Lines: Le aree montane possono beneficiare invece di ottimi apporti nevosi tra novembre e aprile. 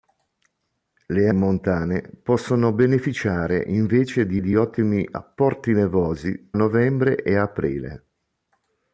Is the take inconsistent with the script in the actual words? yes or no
yes